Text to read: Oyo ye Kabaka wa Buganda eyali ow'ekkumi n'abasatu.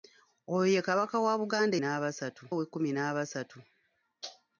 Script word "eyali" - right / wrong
wrong